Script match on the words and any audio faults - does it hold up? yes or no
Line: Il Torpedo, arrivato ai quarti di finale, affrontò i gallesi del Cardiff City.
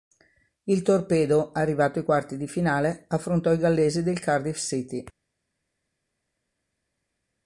yes